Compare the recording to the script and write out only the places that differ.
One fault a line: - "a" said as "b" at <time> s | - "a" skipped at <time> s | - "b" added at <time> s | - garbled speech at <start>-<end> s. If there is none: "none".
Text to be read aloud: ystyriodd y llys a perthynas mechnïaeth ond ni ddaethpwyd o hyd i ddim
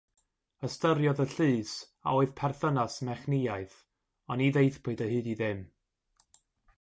- "oedd" added at 2.2 s